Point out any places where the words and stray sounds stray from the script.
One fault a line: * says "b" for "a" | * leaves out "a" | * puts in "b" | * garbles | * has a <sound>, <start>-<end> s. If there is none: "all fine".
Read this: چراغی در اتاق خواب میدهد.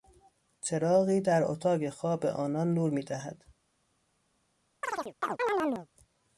* puts in "آنان نور"
* has a chirp, 4.8-5.9 s